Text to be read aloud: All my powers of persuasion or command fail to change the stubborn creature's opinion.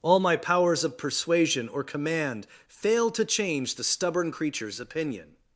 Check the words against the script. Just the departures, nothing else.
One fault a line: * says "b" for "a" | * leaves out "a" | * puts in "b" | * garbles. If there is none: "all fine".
all fine